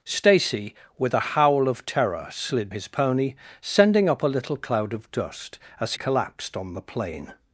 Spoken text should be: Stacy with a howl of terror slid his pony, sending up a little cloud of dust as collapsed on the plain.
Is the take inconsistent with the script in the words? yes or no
no